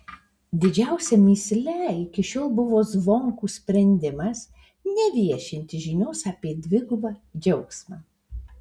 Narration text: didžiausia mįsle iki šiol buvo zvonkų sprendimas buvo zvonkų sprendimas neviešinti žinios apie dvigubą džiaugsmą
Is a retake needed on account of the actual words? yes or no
yes